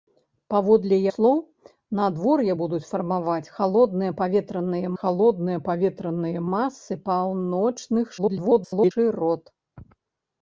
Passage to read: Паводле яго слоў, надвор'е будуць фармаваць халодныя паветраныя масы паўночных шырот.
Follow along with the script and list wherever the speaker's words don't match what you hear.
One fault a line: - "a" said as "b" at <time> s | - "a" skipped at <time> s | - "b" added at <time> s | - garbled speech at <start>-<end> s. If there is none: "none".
- "яго" skipped at 1.0 s
- "халодныя паветраныя" added at 5.0 s
- garbled speech at 8.2-8.9 s